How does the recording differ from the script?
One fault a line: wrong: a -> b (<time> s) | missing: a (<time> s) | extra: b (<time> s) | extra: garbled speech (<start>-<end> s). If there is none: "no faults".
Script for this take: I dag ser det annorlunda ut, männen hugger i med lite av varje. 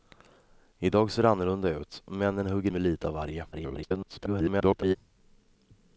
missing: i (2.7 s)
extra: garbled speech (3.5-5.0 s)